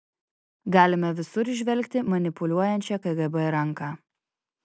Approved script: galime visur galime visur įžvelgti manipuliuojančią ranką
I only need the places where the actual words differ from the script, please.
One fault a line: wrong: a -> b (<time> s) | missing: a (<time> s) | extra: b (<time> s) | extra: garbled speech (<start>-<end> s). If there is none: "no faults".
missing: galime visur (1.5 s)
extra: kgb (3.1 s)